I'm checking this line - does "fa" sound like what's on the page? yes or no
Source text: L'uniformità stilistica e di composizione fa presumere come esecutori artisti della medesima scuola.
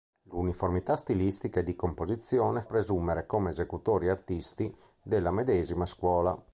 no